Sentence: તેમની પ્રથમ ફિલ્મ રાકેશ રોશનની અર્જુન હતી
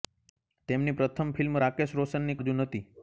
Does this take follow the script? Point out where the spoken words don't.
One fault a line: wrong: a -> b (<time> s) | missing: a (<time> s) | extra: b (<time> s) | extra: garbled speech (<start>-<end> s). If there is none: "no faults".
no faults